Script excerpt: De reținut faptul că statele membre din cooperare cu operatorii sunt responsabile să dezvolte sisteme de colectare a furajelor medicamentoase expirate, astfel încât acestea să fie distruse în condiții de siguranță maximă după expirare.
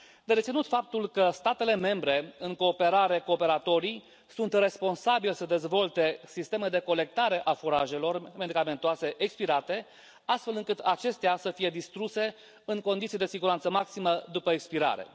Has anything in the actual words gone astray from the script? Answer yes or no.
yes